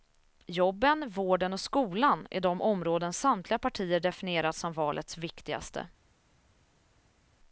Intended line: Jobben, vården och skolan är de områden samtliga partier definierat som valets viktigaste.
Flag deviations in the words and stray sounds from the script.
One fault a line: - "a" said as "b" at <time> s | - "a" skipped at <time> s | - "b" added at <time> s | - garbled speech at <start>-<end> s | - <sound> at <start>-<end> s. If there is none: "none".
none